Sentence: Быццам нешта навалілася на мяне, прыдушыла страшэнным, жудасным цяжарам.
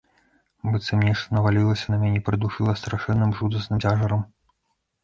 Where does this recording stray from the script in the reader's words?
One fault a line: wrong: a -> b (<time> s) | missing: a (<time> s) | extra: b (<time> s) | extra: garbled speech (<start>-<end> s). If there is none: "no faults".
no faults